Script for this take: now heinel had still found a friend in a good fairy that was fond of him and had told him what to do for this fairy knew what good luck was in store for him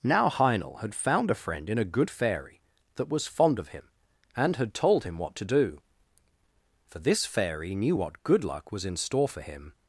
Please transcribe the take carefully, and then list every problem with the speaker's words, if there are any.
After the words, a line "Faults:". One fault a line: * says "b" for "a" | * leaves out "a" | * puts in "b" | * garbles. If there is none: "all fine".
now heinel had found a friend in a good fairy that was fond of him and had told him what to do for this fairy knew what good luck was in store for him
Faults:
* leaves out "still"